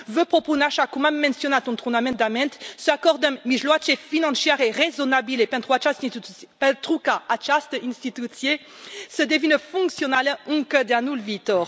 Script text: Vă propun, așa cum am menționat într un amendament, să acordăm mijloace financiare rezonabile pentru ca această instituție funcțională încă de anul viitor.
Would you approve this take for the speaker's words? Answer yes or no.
no